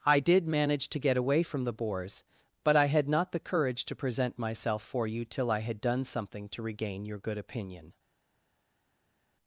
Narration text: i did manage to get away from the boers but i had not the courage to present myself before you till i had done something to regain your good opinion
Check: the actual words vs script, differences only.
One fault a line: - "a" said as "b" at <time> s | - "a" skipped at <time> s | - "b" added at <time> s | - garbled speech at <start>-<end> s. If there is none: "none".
- "before" said as "for" at 4.8 s